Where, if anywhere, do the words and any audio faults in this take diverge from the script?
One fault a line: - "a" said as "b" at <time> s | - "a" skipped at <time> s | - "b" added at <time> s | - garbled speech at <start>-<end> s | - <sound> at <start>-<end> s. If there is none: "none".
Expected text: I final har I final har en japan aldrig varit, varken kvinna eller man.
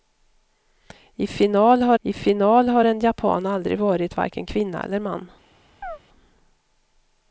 - chirp at 5.8-6.0 s